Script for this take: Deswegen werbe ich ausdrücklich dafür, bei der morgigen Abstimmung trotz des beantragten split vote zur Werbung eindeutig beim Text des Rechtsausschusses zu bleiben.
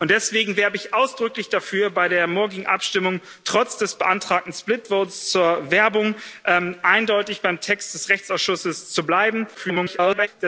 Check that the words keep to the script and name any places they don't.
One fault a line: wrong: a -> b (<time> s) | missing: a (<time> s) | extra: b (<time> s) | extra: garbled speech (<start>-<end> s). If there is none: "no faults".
extra: garbled speech (9.5-10.3 s)